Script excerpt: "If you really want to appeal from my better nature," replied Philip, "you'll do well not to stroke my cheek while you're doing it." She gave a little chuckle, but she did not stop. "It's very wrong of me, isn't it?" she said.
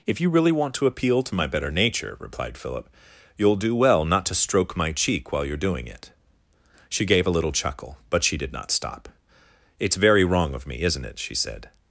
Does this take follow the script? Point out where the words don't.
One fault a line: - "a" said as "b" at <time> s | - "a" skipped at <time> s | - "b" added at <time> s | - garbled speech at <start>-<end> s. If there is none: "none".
- "from" said as "to" at 1.2 s